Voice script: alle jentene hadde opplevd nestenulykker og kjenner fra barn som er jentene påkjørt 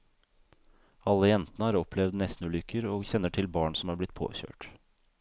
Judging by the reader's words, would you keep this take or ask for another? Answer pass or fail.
fail